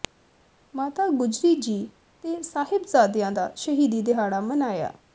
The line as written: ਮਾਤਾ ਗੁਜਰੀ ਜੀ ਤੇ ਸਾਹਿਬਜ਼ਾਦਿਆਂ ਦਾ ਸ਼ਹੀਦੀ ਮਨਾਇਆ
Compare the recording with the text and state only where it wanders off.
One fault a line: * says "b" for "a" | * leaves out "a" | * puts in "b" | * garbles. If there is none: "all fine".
* puts in "ਦਿਹਾੜਾ"